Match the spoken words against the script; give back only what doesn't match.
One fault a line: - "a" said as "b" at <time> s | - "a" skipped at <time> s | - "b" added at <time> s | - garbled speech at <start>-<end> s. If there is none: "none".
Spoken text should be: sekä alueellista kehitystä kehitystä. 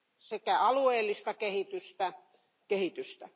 none